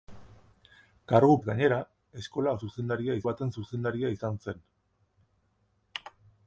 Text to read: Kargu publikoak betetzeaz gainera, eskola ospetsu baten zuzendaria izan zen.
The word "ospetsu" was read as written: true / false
false